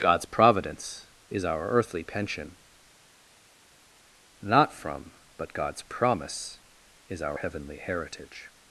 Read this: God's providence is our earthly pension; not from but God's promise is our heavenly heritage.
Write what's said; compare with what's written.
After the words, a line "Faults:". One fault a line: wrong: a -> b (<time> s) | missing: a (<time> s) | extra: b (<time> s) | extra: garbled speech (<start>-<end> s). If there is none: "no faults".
God's providence is our earthly pension; not from but God's promise is our heavenly heritage.
Faults:
no faults